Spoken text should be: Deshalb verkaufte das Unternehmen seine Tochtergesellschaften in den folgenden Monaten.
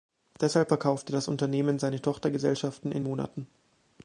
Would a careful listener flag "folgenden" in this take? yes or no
yes